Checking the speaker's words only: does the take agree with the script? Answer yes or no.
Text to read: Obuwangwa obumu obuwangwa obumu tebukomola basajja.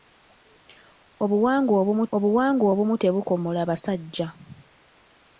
yes